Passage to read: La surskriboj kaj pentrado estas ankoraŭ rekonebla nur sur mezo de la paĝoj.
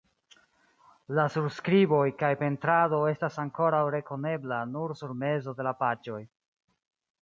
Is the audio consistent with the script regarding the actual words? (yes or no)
yes